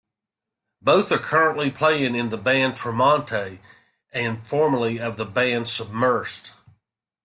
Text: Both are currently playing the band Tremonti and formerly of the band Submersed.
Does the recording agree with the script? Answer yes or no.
no